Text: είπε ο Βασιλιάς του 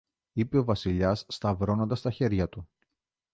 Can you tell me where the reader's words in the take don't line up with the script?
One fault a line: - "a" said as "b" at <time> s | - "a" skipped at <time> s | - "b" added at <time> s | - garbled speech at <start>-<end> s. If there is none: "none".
- "σταυρώνοντας τα χέρια" added at 1.3 s